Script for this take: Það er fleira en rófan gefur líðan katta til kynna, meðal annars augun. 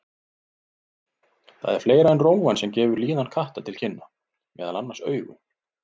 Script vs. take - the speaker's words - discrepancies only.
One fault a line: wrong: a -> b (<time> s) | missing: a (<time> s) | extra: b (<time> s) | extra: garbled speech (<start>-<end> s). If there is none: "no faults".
extra: sem (2.6 s)